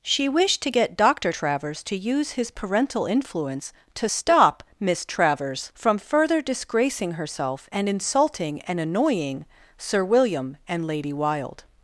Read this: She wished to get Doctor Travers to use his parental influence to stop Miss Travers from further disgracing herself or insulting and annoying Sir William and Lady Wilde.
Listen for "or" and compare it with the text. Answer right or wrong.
wrong